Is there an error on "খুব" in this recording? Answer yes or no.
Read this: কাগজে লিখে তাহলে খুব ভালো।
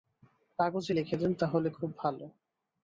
no